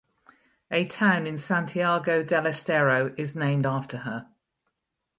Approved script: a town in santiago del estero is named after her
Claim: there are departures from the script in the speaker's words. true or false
false